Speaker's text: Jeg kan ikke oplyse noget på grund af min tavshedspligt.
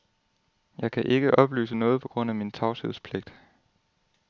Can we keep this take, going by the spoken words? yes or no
yes